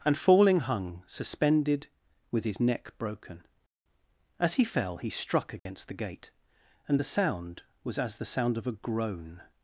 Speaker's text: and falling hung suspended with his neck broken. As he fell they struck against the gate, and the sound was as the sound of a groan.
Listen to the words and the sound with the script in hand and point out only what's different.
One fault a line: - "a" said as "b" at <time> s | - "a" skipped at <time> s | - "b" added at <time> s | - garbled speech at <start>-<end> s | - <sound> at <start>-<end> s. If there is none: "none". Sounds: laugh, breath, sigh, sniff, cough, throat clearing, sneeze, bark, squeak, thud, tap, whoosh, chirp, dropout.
- "they" said as "he" at 5.0 s
- dropout at 5.6-5.7 s